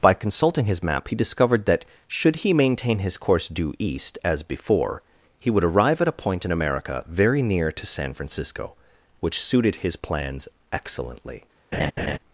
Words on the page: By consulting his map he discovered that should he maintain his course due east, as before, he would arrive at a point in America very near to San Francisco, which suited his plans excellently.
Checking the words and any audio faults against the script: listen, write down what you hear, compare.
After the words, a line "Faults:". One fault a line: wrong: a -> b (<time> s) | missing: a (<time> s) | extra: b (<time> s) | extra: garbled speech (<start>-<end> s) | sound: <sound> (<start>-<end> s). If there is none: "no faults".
By consulting his map he discovered that should he maintain his course due east, as before, he would arrive at a point in America very near to San Francisco, which suited his plans excellently.
Faults:
sound: laugh (11.7-12.2 s)